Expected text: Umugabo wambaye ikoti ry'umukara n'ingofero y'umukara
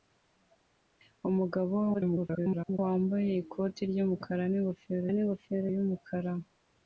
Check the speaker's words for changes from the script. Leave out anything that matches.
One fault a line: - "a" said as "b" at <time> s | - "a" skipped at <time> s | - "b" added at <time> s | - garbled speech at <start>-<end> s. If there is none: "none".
- garbled speech at 1.9-2.8 s
- "n'ingofero" added at 5.1 s